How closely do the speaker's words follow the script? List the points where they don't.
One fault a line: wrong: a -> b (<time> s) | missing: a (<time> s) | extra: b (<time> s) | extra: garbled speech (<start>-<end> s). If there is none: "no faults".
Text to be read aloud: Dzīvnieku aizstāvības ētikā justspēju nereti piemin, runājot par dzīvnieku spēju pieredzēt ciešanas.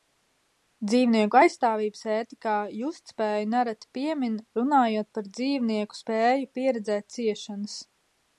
no faults